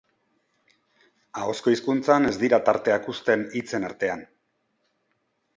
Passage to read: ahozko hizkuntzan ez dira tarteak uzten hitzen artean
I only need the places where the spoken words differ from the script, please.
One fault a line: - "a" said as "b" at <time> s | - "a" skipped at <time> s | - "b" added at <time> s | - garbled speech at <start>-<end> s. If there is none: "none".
none